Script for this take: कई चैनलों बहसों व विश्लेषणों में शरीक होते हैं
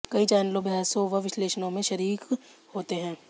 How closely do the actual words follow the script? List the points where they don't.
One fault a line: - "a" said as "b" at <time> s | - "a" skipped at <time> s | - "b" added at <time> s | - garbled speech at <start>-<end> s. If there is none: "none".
none